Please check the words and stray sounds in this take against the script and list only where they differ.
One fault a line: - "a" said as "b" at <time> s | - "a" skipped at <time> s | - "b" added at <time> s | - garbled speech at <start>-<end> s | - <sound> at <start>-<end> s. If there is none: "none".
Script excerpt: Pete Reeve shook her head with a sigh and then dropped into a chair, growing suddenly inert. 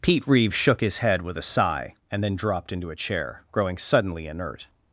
- "her" said as "his" at 0.8 s